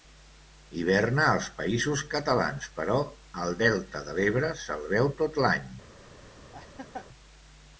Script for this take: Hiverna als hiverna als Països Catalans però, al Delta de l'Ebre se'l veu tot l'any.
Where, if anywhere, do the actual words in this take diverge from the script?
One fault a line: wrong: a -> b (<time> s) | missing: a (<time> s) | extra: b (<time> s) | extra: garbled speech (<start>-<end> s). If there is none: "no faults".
missing: hiverna als (1.5 s)